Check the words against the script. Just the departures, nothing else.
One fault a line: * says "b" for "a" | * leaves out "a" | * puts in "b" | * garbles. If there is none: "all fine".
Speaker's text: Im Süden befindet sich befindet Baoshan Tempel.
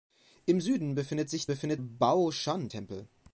all fine